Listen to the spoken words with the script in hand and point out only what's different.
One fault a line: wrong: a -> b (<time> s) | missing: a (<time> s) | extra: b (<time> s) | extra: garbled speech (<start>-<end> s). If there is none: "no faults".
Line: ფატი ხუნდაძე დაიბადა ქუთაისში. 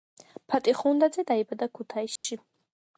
no faults